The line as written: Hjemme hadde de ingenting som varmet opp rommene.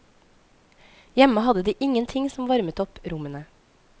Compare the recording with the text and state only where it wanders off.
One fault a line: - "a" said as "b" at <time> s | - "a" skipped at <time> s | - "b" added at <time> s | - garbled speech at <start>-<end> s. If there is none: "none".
none